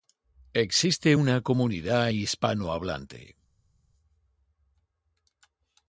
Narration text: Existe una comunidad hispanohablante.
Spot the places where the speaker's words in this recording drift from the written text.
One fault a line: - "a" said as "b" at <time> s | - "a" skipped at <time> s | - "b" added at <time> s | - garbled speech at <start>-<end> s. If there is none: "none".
none